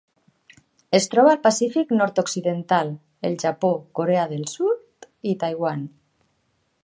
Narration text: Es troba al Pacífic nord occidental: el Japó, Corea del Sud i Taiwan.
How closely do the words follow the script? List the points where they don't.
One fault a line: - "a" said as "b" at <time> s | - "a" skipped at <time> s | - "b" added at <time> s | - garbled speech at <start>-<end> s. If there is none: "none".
none